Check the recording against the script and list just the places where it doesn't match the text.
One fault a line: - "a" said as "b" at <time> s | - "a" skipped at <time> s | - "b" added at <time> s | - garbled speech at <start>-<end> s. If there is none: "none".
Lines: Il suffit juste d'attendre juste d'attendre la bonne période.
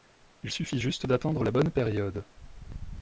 - "juste d'attendre" skipped at 1.4 s